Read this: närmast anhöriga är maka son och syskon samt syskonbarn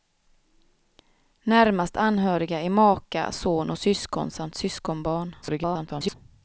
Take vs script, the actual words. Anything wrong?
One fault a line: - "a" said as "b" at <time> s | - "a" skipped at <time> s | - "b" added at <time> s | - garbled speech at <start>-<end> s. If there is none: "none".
- garbled speech at 5.4-6.1 s